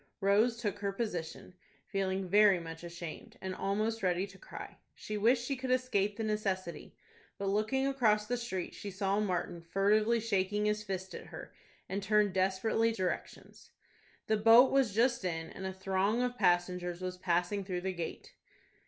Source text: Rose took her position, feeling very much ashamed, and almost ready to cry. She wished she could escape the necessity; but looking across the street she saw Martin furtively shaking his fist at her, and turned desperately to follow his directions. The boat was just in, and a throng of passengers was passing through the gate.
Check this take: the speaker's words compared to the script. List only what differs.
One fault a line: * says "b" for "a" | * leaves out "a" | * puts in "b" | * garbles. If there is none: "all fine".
* leaves out "to follow his"